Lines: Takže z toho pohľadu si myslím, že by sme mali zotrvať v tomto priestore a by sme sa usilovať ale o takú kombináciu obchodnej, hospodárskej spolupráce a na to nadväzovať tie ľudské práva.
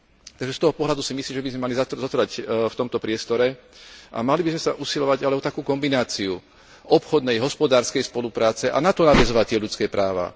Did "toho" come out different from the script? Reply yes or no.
no